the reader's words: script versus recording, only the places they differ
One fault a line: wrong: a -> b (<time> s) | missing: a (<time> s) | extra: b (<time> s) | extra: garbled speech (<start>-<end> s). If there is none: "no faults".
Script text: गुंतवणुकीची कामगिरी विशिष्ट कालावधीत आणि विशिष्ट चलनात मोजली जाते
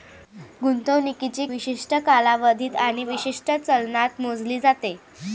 missing: कामगिरी (1.4 s)